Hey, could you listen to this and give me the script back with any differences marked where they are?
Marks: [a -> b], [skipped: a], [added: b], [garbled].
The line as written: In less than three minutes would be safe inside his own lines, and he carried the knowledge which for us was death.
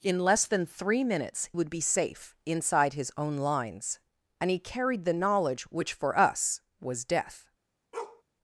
In less than three minutes would be safe inside his own lines, and he carried the knowledge which for us was death.